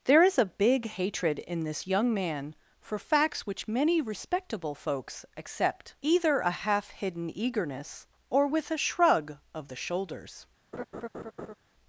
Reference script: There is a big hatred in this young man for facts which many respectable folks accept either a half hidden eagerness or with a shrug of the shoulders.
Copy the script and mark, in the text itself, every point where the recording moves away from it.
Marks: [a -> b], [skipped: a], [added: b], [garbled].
There is a big hatred in this young man for facts which many respectable folks accept either a half hidden eagerness or with a shrug of the shoulders.